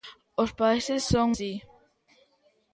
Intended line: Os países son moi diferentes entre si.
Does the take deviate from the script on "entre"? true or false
true